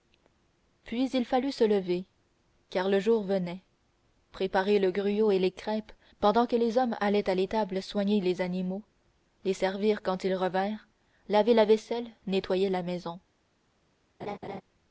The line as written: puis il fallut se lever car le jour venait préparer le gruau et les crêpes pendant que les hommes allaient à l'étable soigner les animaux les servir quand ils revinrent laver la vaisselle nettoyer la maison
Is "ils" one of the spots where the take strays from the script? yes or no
no